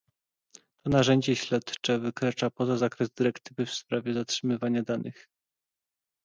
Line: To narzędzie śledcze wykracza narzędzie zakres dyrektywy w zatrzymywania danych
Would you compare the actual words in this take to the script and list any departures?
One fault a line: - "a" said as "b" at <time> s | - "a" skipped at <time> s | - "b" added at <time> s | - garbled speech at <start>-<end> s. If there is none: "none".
- "narzędzie" said as "poza" at 2.5 s
- "sprawie" added at 3.7 s